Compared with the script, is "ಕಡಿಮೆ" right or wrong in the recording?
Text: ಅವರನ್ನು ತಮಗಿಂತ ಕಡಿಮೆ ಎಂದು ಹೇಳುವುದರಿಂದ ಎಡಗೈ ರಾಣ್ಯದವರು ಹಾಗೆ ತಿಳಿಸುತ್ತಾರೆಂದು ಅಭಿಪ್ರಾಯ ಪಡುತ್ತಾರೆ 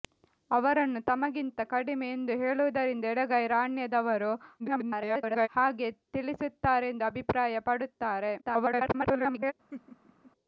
right